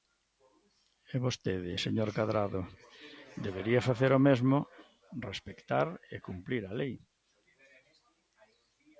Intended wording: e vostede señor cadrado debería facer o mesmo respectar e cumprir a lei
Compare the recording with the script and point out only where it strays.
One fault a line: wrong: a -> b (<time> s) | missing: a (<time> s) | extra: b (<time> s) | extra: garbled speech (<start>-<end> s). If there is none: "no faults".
no faults